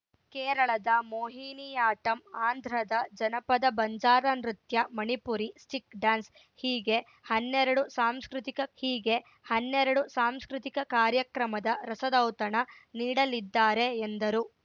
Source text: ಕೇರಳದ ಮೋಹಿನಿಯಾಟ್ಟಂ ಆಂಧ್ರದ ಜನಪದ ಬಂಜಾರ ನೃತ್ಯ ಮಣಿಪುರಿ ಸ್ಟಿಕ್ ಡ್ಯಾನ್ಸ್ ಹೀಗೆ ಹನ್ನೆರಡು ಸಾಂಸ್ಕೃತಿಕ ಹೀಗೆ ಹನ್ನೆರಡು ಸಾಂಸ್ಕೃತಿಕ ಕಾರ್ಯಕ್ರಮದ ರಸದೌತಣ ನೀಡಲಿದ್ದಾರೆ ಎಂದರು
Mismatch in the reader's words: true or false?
false